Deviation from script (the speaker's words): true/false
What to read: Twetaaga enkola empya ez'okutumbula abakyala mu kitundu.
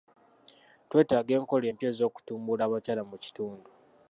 false